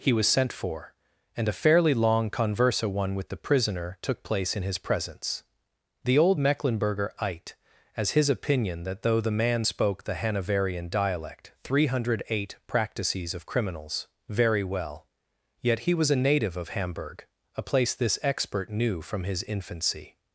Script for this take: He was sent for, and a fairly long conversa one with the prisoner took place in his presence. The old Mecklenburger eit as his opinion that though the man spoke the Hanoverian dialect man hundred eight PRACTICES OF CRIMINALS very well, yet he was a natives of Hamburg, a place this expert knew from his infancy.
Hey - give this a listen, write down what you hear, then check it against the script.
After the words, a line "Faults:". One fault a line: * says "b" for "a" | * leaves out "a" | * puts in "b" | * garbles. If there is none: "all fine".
He was sent for, and a fairly long conversa one with the prisoner took place in his presence. The old Mecklenburger eit as his opinion that though the man spoke the Hanoverian dialect three hundred eight PRACTICES OF CRIMINALS very well, yet he was a native of Hamburg, a place this expert knew from his infancy.
Faults:
* says "three" for "man"
* says "native" for "natives"